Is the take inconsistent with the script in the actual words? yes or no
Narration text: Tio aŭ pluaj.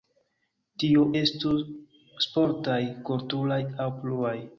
yes